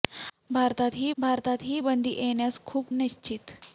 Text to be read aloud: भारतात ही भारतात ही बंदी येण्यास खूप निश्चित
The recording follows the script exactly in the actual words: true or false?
true